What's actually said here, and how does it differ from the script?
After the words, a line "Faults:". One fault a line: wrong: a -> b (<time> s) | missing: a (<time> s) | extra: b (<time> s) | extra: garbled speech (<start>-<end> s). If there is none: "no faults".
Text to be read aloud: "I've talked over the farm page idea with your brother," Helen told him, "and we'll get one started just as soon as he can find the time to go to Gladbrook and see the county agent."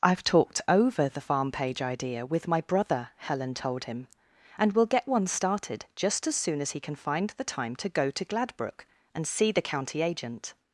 "I've talked over the farm page idea with my brother," Helen told him, "and we'll get one started just as soon as he can find the time to go to Gladbrook and see the county agent."
Faults:
wrong: your -> my (2.5 s)